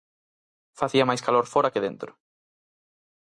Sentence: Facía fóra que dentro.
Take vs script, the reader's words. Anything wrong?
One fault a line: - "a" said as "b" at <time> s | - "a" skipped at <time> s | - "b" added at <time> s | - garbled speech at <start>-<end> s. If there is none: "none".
- "máis calor" added at 1.1 s